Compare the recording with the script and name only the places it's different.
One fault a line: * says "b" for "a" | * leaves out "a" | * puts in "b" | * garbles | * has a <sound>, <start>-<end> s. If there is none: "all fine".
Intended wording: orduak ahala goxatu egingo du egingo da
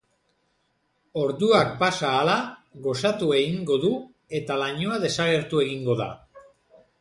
* puts in "pasa"
* puts in "eta lainoa desagertu"